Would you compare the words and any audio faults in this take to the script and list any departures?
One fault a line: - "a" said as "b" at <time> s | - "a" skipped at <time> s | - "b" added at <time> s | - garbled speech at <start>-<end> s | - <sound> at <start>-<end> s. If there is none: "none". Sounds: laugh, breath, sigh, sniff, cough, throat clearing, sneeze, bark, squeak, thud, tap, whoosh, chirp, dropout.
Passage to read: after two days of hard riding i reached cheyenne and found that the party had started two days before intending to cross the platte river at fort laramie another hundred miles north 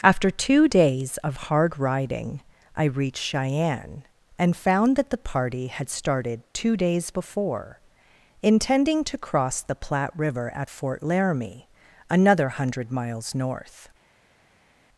none